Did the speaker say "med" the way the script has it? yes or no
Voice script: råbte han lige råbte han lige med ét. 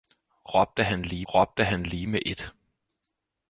yes